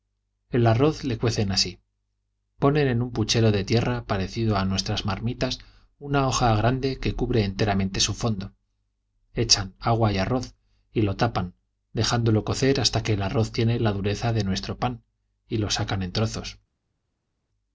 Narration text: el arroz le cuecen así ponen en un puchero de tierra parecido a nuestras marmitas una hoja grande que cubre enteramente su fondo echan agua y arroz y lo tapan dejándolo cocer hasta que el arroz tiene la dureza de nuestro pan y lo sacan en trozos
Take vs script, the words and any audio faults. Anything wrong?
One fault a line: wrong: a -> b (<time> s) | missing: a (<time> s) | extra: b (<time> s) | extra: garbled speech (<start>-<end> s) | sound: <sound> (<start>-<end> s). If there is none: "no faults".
no faults